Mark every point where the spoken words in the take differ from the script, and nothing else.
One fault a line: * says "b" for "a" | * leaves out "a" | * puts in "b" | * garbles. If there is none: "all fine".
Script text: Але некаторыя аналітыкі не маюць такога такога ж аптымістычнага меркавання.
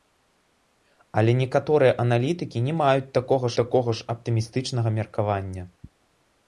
all fine